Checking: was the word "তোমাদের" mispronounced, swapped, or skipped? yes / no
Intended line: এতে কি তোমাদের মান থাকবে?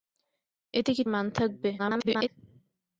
yes